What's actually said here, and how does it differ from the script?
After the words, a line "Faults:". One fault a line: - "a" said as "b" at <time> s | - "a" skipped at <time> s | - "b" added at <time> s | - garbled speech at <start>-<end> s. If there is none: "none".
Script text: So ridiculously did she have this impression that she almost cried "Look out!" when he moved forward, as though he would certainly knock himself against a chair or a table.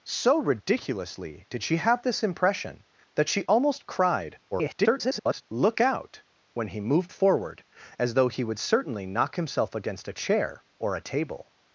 So ridiculously did she have this impression that she almost cried [garbled] "Look out!" when he moved forward, as though he would certainly knock himself against a chair or a table.
Faults:
- garbled speech at 4.5-5.4 s